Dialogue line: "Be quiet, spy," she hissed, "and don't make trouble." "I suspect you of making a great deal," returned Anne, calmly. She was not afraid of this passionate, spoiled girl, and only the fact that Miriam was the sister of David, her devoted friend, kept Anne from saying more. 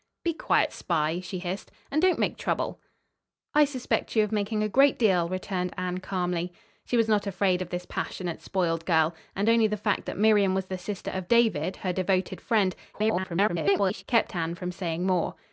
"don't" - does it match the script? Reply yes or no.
yes